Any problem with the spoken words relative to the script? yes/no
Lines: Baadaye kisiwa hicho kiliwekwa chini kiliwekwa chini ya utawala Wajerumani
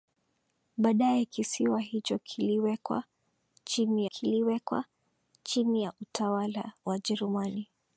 no